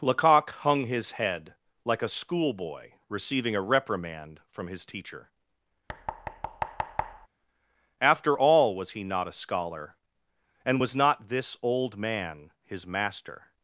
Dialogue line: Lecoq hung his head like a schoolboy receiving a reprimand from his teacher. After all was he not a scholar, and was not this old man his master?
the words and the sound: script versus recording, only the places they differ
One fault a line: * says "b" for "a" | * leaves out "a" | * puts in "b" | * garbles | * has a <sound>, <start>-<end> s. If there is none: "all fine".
* has a thud, 5.9-7.3 s